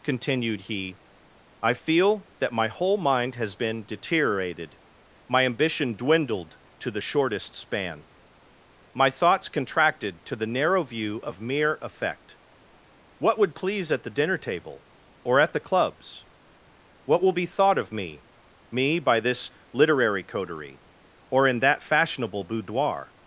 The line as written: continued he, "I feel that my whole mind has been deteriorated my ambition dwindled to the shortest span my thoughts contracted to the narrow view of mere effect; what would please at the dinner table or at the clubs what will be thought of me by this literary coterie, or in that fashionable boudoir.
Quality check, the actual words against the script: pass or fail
fail